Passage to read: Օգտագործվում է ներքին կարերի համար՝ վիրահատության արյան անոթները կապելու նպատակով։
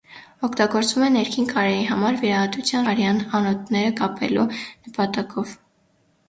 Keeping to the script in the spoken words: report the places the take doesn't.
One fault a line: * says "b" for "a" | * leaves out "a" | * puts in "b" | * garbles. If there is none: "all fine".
all fine